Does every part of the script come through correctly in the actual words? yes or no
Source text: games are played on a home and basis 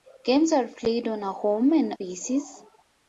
yes